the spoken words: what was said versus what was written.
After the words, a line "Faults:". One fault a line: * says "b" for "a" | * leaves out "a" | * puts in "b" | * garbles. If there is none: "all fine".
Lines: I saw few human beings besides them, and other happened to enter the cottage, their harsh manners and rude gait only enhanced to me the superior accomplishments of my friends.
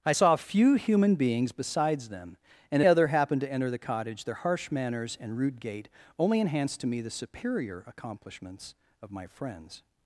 I saw few human beings besides them, and other happened to enter the cottage, their harsh manners and rude gait only enhanced to me the superior accomplishments of my friends.
Faults:
all fine